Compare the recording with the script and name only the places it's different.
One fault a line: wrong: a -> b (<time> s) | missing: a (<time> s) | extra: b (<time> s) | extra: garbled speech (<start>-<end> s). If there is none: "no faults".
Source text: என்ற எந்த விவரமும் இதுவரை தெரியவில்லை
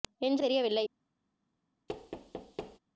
missing: எந்த விவரமும் இதுவரை (0.4 s)